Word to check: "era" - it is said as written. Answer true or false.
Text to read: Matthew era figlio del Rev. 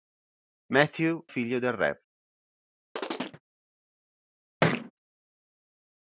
false